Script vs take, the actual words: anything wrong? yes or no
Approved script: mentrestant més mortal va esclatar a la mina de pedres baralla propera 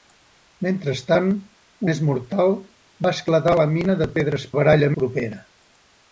no